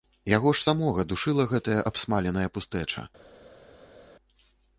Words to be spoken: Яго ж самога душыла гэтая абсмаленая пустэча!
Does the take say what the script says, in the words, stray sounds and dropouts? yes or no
yes